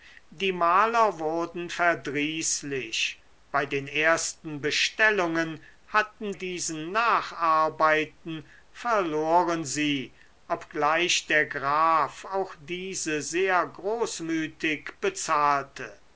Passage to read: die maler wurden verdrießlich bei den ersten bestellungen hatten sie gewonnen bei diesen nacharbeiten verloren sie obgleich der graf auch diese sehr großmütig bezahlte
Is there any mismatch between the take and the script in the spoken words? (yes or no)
yes